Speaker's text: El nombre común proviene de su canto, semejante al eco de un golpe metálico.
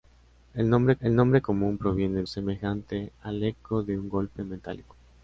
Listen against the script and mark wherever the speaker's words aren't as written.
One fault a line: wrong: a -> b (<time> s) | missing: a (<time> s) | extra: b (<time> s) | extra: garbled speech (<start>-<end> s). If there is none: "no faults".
extra: el nombre (1.0 s)
missing: de su canto (2.2 s)